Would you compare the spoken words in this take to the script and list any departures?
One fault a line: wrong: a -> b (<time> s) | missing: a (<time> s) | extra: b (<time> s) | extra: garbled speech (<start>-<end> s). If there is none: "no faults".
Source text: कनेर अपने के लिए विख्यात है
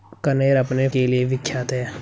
no faults